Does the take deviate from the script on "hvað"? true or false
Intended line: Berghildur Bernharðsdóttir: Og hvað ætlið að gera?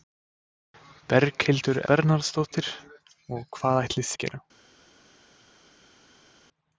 false